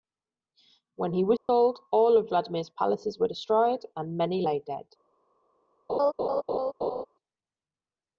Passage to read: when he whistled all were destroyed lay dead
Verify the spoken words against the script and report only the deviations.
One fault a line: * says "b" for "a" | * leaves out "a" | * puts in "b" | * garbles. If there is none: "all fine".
* puts in "of vladimir's palaces"
* puts in "and many"